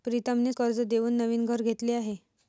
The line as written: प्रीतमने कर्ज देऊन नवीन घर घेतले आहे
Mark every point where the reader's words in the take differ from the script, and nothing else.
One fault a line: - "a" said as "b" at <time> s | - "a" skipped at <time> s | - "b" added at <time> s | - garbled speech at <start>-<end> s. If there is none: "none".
none